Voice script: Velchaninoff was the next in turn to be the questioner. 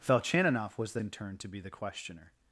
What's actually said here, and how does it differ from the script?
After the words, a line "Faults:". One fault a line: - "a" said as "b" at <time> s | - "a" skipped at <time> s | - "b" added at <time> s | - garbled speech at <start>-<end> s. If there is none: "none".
Velchaninoff was the in turn to be the questioner.
Faults:
- "next" skipped at 1.0 s